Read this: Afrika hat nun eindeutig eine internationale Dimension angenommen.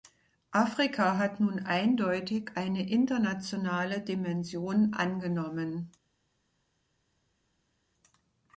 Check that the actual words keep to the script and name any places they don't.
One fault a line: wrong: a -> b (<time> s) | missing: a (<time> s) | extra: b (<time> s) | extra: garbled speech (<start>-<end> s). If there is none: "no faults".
no faults